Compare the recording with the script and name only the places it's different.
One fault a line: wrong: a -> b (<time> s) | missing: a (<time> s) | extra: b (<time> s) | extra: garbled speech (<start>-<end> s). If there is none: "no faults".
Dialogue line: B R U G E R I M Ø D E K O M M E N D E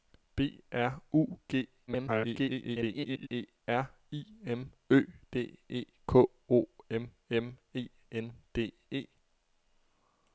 extra: garbled speech (1.9-3.3 s)